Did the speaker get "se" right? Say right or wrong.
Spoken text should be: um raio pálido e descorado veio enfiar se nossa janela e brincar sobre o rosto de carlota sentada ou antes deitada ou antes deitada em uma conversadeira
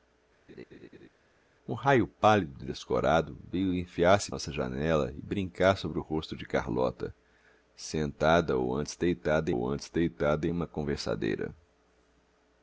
right